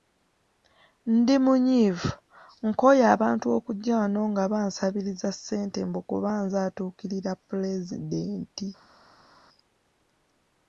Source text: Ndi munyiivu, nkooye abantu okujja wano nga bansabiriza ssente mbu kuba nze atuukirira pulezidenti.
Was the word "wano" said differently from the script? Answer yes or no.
no